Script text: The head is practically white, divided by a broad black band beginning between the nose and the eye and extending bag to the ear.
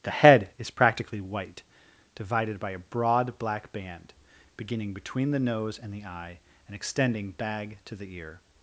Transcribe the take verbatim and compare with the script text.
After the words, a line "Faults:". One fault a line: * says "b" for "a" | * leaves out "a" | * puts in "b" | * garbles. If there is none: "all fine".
The head is practically white, divided by a broad black band beginning between the nose and the eye and extending bag to the ear.
Faults:
all fine